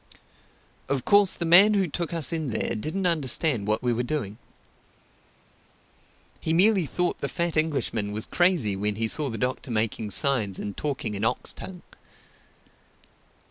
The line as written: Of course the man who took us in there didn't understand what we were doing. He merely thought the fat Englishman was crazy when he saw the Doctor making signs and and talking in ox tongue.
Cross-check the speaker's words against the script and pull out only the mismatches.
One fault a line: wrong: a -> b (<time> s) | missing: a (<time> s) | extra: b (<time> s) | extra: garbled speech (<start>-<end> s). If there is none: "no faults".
missing: and (10.7 s)